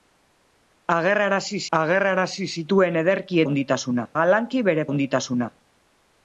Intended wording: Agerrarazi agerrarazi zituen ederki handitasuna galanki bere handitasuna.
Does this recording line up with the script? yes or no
yes